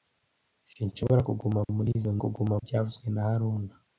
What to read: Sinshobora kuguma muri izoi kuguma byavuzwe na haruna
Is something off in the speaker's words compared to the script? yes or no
no